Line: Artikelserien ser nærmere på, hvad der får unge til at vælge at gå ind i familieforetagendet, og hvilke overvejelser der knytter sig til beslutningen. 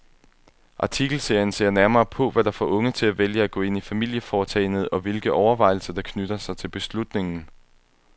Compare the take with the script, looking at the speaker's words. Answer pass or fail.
pass